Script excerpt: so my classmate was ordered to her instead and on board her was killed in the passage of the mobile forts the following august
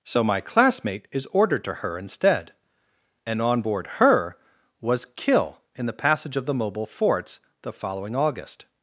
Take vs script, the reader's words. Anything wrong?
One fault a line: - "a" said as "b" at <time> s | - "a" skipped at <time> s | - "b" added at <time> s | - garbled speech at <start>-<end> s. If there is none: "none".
- "was" said as "is" at 1.1 s
- "killed" said as "kill" at 5.2 s